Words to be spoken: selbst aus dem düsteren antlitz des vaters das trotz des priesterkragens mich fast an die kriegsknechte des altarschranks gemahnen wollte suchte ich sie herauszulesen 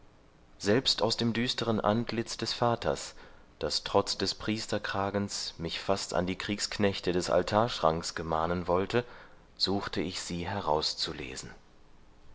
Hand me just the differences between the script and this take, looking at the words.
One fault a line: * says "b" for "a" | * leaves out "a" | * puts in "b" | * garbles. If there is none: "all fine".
all fine